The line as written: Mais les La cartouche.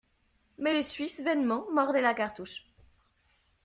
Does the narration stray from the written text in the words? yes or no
yes